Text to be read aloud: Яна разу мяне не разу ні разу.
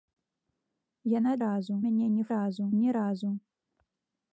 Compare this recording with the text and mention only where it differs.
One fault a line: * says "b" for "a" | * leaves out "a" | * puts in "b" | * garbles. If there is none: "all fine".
all fine